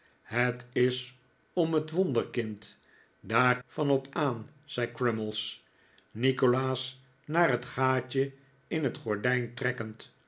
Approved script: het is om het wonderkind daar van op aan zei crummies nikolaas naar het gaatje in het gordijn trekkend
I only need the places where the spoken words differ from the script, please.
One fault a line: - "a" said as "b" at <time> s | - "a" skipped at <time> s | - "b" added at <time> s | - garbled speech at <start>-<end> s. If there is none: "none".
none